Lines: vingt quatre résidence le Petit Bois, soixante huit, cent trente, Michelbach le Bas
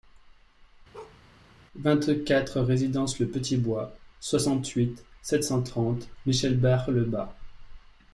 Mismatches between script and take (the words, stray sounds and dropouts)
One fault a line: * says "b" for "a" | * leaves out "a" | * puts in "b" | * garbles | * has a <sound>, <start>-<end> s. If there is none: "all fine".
* has a bark, 0.9-1.2 s
* puts in "sept"